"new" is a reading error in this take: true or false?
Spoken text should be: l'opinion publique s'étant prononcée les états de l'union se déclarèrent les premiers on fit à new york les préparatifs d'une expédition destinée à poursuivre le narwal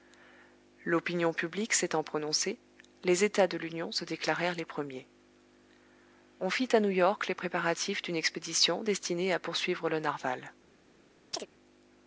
false